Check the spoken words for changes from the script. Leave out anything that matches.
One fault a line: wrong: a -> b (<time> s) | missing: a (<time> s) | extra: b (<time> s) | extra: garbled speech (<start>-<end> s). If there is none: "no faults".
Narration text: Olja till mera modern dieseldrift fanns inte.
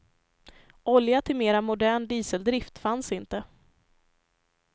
no faults